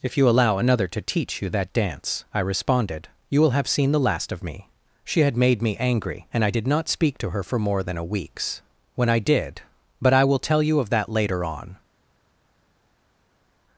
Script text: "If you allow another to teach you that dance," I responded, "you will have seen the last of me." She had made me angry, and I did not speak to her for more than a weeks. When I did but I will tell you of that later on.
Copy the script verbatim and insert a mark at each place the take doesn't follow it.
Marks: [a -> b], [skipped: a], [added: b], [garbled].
"If you allow another to teach you that dance," I responded, "you will have seen the last of me." She had made me angry, and I did not speak to her for more than a weeks. When I did but I will tell you of that later on.